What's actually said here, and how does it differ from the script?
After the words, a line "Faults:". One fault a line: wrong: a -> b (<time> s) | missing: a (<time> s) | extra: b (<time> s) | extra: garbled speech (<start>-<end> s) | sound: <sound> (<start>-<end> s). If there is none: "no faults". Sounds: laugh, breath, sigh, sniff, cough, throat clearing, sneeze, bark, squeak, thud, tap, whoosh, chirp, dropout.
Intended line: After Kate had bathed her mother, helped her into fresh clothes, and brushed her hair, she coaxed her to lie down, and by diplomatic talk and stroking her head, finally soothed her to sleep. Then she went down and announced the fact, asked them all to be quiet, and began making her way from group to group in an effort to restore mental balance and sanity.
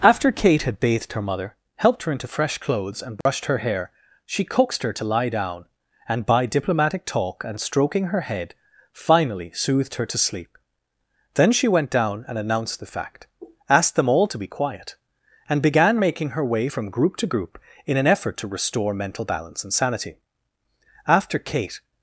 After Kate had bathed her mother, helped her into fresh clothes, and brushed her hair, she coaxed her to lie down, and by diplomatic talk and stroking her head, finally soothed her to sleep. Then she went down and announced the fact, asked them all to be quiet, and began making her way from group to group in an effort to restore mental balance and sanity. After Kate
Faults:
sound: dropout (3.2-3.3 s)
extra: After Kate (21.1 s)